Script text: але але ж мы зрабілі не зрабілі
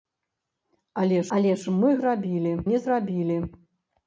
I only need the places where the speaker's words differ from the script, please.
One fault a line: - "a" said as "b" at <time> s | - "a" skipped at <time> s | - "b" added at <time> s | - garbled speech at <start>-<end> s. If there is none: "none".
none